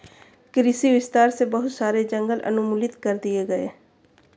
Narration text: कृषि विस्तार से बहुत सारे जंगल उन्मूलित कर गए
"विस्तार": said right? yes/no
yes